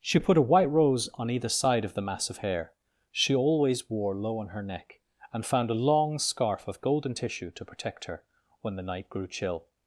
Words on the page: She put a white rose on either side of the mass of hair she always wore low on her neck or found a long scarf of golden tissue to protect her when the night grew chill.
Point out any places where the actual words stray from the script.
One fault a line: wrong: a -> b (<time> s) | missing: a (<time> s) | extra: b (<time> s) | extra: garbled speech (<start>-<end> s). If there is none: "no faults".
wrong: or -> and (5.3 s)